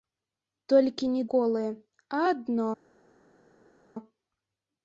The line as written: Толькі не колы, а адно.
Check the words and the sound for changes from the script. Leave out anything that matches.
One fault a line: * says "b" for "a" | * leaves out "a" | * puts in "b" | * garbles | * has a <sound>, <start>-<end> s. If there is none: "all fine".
all fine